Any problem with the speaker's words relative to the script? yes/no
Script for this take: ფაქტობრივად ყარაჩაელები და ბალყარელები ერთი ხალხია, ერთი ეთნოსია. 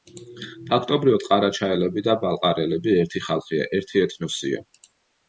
no